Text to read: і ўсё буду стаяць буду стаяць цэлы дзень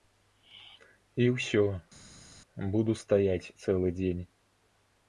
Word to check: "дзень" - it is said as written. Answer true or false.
true